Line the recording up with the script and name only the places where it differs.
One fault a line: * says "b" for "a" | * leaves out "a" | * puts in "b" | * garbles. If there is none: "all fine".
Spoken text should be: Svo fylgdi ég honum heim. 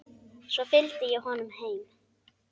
all fine